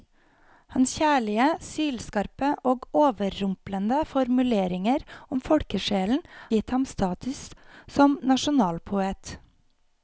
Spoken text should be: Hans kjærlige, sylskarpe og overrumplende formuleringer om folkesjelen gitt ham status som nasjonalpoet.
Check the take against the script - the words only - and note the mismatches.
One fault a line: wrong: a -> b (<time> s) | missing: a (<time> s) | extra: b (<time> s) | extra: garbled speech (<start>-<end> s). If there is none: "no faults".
no faults